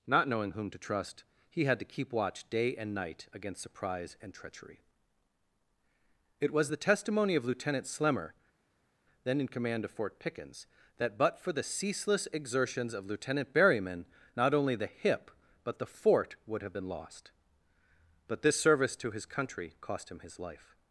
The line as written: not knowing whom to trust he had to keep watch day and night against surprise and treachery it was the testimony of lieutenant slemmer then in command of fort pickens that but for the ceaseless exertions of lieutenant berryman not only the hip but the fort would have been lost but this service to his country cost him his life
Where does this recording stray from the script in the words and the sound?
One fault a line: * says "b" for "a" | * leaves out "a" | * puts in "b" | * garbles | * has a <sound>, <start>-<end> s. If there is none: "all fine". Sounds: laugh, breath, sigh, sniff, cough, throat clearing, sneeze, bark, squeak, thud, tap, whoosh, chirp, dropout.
all fine